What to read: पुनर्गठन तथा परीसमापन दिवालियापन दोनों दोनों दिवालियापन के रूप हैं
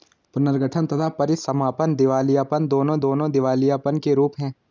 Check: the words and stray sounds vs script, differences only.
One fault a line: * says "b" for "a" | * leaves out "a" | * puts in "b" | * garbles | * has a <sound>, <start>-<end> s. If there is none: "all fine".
all fine